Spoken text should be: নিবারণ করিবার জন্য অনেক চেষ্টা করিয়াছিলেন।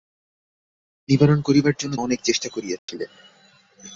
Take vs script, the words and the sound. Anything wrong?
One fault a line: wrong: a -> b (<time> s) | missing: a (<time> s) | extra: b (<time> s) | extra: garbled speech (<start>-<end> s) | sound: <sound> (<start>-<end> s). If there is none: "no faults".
sound: dropout (2.8-2.9 s)